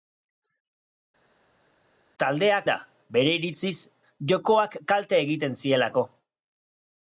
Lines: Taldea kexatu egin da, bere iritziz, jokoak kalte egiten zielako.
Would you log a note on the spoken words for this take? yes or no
yes